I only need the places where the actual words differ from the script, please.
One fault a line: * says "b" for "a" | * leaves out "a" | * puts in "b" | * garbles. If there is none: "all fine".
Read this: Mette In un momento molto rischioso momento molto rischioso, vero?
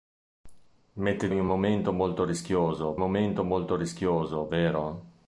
all fine